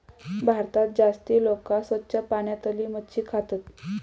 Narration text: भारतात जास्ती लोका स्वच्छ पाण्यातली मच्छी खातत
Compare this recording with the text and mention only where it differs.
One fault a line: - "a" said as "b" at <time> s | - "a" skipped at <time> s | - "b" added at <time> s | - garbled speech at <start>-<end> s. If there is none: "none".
none